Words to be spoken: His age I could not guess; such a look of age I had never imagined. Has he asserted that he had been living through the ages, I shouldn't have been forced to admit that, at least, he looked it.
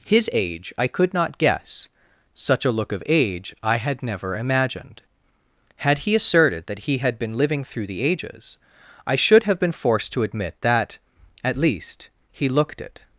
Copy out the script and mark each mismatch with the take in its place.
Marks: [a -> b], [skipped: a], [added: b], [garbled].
His age I could not guess; such a look of age I had never imagined. [Has -> Had] he asserted that he had been living through the ages, I [shouldn't -> should] have been forced to admit that, at least, he looked it.